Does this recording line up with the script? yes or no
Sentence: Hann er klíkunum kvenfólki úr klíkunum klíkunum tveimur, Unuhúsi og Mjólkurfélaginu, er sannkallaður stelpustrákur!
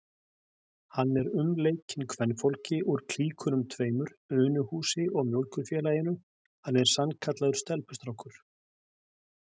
no